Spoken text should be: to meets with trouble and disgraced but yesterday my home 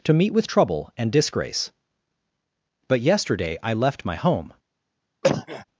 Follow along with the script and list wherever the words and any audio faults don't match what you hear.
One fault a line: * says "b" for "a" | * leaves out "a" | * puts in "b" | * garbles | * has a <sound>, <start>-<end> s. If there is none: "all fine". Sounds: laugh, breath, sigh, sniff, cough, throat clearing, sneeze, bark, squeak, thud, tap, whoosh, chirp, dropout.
* says "meet" for "meets"
* says "disgrace" for "disgraced"
* puts in "i left"
* has a cough, 5.2-5.6 s